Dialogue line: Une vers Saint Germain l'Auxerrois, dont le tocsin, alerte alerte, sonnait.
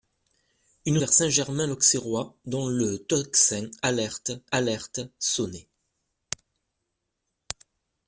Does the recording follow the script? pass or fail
pass